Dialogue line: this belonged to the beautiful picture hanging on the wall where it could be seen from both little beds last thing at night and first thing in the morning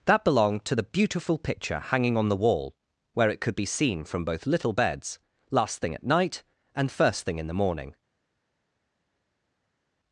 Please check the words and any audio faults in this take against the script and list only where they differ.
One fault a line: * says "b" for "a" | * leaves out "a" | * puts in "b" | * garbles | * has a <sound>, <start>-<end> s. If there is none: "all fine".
* says "that" for "this"